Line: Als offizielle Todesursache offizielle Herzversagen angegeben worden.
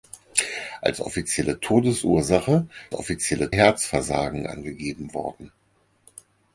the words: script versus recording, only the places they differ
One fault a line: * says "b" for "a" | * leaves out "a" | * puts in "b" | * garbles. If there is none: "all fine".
all fine